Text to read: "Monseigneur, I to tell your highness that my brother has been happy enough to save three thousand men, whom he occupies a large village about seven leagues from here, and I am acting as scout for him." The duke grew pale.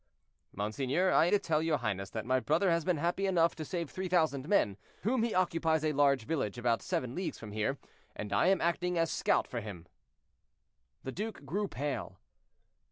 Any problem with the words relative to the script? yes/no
no